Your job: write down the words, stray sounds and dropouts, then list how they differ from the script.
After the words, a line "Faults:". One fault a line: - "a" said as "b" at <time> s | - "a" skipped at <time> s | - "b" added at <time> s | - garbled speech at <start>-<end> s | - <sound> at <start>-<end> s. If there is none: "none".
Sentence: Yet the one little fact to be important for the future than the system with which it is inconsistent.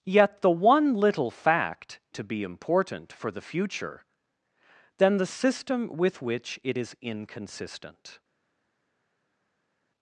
Yet the one little fact to be important for the future than the system with which it is inconsistent.
Faults:
none